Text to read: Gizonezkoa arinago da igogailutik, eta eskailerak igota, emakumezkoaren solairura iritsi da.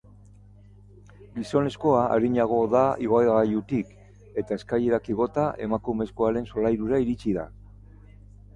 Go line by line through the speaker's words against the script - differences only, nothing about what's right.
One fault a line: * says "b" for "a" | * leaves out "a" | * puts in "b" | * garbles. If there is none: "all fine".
all fine